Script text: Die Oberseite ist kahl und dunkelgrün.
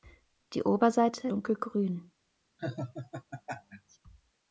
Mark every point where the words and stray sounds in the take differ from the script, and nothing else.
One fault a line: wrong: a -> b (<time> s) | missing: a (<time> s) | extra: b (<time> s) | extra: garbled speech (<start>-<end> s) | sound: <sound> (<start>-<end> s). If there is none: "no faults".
missing: ist kahl und (1.3 s)
sound: laugh (2.6-4.0 s)